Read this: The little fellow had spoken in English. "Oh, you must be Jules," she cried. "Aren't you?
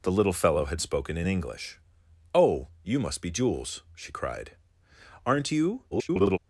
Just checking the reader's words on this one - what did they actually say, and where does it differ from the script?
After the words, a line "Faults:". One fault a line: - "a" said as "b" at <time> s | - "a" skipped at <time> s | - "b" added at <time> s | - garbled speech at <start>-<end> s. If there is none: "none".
The little fellow had spoken in English. "Oh, you must be Jules," she cried. "Aren't you? [garbled]
Faults:
- garbled speech at 5.9-6.4 s